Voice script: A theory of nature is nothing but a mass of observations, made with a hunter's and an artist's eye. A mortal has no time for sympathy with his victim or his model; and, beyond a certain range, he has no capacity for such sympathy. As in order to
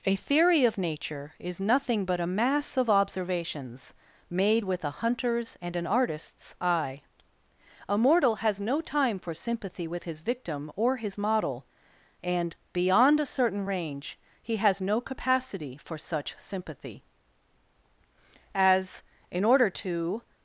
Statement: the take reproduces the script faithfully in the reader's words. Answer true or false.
true